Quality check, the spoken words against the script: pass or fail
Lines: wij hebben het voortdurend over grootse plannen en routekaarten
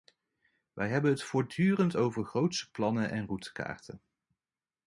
pass